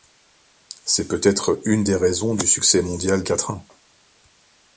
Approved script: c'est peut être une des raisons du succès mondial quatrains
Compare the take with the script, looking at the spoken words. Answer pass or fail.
pass